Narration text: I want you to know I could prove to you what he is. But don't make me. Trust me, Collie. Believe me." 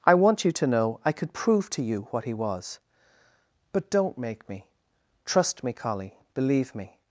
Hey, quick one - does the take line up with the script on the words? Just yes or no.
no